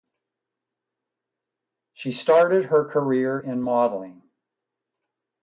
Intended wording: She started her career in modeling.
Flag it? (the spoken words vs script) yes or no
no